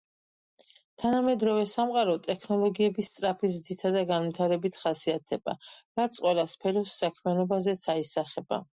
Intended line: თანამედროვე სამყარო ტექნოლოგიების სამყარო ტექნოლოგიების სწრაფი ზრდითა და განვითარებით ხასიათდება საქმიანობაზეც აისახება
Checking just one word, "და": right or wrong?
right